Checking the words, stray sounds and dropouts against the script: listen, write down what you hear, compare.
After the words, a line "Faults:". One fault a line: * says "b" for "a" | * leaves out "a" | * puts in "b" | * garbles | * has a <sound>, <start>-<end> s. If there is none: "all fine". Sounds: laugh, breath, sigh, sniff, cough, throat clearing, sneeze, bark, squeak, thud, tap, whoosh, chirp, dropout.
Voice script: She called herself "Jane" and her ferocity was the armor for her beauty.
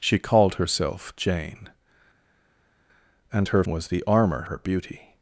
She called herself "Jane" and her was the armor her beauty.
Faults:
* leaves out "ferocity"
* leaves out "for"